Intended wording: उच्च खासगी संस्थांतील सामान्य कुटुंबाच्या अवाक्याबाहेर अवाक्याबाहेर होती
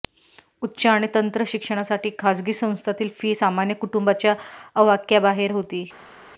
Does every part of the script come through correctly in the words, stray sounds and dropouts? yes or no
no